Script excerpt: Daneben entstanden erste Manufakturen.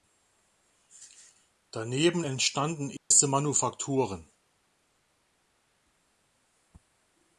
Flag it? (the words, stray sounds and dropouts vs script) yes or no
yes